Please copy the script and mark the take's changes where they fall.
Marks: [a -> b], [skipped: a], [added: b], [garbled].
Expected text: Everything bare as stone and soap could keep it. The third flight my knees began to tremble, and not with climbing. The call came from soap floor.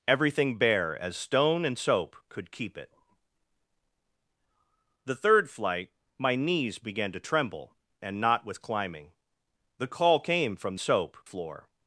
Everything bare as stone and soap could keep it. The third flight my knees began to tremble, and not with climbing. The call came from soap floor.